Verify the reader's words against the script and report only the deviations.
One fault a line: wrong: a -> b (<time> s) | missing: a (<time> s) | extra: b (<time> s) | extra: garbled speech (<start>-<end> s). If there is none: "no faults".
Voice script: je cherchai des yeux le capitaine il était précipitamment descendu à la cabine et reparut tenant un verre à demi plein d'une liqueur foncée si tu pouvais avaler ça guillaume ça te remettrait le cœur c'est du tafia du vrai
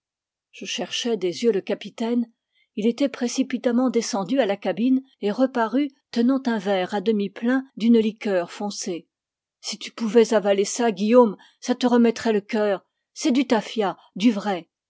no faults